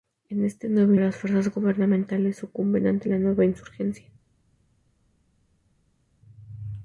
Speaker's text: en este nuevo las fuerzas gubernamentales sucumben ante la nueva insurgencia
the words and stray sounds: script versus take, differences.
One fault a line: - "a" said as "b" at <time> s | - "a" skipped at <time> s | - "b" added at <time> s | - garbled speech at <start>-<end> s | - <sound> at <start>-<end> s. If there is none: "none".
none